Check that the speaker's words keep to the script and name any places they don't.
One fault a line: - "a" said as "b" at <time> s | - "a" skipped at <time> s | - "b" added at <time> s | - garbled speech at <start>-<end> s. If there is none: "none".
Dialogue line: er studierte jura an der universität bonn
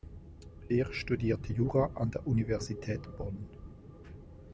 none